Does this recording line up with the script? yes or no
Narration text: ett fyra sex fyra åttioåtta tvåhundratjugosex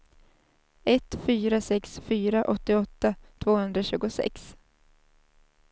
yes